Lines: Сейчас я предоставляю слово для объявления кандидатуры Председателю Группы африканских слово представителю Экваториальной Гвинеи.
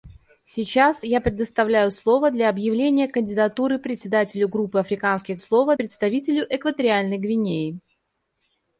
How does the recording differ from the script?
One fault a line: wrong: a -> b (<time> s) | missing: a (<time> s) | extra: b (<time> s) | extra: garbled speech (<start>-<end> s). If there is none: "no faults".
no faults